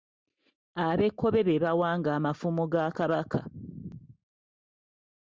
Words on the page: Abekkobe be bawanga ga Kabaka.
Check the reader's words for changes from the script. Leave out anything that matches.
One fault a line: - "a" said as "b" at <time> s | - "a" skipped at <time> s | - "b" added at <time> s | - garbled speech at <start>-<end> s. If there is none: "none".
- "amafumu" added at 2.2 s